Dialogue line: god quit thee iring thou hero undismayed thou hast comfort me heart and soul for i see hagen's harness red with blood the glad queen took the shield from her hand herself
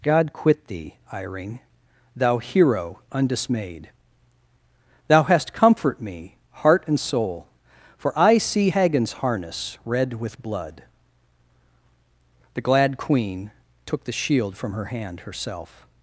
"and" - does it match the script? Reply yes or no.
yes